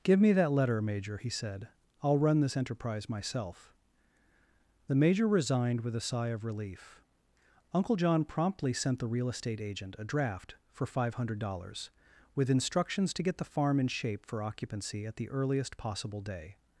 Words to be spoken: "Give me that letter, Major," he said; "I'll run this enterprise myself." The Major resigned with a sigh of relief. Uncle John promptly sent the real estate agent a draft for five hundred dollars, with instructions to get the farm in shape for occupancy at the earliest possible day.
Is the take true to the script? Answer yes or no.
yes